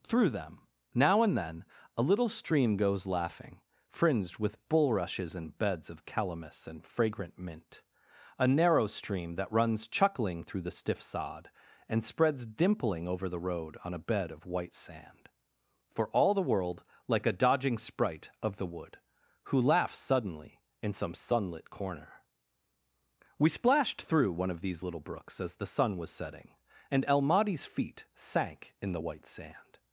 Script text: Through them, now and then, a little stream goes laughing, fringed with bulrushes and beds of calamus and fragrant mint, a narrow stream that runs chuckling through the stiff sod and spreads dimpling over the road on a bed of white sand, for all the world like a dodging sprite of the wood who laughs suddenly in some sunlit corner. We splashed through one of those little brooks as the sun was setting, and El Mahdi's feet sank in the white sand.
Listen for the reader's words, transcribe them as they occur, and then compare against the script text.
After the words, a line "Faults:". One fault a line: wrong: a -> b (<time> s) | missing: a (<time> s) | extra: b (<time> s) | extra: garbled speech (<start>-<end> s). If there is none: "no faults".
Through them, now and then, a little stream goes laughing, fringed with bulrushes and beds of calamus and fragrant mint, a narrow stream that runs chuckling through the stiff sod and spreads dimpling over the road on a bed of white sand, for all the world like a dodging sprite of the wood who laughs suddenly in some sunlit corner. We splashed through one of these little brooks as the sun was setting, and El Mahdi's feet sank in the white sand.
Faults:
wrong: those -> these (24.6 s)